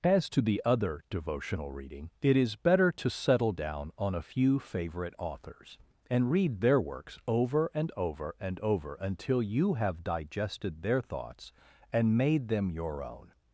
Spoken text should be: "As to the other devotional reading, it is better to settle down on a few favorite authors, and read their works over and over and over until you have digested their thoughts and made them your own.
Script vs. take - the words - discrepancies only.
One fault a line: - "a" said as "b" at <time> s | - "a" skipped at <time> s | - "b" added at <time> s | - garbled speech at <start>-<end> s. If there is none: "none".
none